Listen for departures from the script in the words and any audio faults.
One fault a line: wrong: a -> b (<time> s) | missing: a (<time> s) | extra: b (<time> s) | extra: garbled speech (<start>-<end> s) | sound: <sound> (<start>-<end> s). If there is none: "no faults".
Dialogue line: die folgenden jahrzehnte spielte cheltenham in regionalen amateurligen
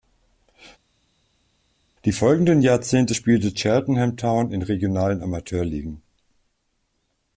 extra: town (4.2 s)